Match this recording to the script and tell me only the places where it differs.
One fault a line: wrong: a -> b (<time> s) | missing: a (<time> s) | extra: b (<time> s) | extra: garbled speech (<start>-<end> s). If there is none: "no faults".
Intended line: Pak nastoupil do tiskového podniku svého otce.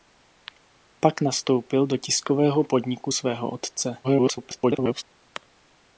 extra: garbled speech (4.0-5.0 s)